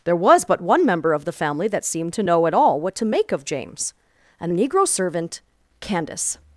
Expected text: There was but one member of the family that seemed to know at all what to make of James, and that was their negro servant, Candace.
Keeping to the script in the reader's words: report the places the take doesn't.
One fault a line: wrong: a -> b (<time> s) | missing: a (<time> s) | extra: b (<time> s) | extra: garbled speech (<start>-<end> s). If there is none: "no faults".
missing: that was their (4.5 s)